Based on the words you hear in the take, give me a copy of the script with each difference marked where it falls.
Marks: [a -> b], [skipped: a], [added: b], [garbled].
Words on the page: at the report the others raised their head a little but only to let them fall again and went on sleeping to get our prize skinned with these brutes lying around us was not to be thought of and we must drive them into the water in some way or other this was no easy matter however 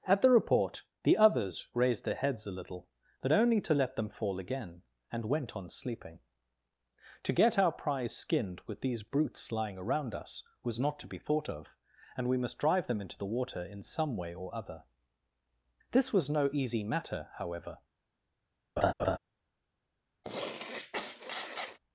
at the report the others raised their [head -> heads] a little but only to let them fall again and went on sleeping to get our prize skinned with these brutes lying around us was not to be thought of and we must drive them into the water in some way or other this was no easy matter however